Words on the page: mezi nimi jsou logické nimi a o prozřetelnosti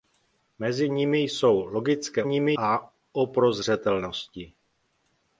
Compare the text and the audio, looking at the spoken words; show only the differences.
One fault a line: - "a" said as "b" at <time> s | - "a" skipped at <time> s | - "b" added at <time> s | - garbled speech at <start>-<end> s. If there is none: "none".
none